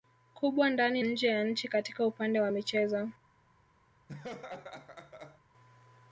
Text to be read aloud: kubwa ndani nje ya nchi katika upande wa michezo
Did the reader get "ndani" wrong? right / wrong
right